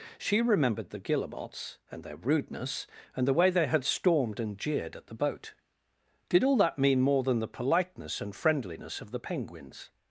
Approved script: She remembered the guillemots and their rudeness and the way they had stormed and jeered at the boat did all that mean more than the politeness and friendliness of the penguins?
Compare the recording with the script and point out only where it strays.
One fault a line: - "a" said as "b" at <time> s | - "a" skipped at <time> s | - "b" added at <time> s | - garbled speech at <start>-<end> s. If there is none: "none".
none